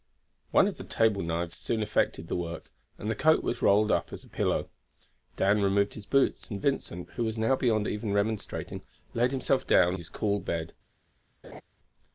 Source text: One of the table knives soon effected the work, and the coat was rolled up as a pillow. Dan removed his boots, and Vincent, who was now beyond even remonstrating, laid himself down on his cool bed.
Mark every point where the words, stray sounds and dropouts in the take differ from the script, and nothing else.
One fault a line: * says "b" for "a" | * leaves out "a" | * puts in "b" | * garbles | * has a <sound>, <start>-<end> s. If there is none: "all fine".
* leaves out "on"
* has a laugh, 11.4-11.6 s